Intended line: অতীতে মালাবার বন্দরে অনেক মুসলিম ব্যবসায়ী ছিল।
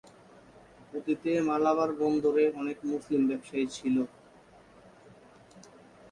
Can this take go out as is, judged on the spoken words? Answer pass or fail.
pass